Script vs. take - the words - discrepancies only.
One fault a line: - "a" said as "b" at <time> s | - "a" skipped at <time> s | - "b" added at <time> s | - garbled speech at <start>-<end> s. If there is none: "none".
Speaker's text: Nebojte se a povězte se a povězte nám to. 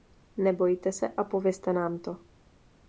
- "se a povězte" skipped at 1.7 s